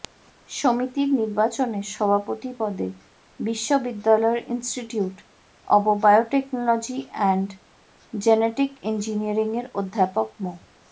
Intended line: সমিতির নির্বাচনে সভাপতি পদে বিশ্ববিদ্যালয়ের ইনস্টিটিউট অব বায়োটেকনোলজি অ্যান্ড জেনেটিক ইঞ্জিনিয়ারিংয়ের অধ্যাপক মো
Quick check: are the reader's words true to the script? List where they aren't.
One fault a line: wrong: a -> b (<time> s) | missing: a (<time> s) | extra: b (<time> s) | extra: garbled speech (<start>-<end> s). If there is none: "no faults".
no faults